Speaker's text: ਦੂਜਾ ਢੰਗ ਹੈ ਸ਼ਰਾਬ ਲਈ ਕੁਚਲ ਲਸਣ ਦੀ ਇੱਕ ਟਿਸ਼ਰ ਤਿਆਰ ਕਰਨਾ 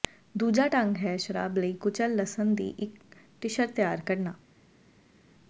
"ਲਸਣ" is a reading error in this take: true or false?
false